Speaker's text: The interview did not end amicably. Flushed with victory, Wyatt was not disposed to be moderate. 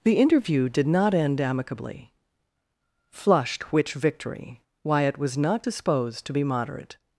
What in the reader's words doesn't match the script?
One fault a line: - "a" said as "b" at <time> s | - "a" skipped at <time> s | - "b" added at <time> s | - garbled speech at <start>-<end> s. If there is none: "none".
- "with" said as "which" at 3.7 s